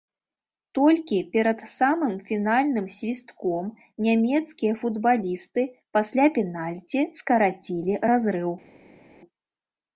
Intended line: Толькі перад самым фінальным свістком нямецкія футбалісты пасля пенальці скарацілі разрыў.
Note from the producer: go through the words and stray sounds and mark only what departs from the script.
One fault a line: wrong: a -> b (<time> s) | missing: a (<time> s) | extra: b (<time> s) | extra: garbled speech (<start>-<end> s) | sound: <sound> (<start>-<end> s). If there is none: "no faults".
no faults